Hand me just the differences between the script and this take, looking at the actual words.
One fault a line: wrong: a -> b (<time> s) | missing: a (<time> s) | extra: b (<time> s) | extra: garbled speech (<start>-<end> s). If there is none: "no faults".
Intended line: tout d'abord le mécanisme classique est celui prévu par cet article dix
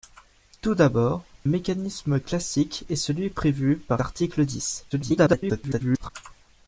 missing: le (1.2 s)
missing: cet (4.0 s)
extra: garbled speech (4.9-6.1 s)